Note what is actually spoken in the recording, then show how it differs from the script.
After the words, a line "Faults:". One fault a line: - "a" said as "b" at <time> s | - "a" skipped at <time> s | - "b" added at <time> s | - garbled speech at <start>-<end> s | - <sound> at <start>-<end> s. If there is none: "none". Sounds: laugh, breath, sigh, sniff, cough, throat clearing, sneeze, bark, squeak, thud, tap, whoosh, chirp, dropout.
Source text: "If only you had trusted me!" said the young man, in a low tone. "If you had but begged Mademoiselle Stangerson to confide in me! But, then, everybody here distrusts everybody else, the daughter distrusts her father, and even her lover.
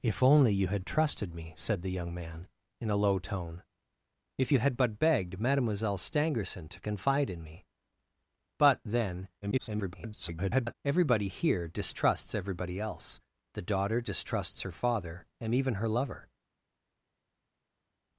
"If only you had trusted me!" said the young man, in a low tone. "If you had but begged Mademoiselle Stangerson to confide in me! But, then, [garbled] everybody here distrusts everybody else, the daughter distrusts her father, and even her lover.
Faults:
- garbled speech at 9.4-10.7 s